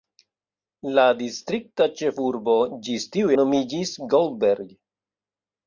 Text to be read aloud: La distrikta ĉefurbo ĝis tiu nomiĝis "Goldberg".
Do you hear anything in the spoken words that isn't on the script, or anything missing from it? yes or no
no